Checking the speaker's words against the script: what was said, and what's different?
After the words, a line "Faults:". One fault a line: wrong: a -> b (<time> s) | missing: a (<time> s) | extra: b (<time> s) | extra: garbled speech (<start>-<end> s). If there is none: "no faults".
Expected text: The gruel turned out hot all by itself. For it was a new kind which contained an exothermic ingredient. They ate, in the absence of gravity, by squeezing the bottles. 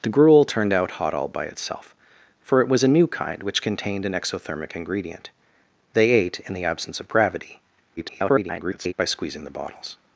The gruel turned out hot all by itself. For it was a new kind which contained an exothermic ingredient. They ate, in the absence of gravity, [garbled] by squeezing the bottles.
Faults:
extra: garbled speech (8.0-8.9 s)